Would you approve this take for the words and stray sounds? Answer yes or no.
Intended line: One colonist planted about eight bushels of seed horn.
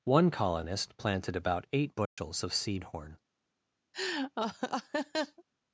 no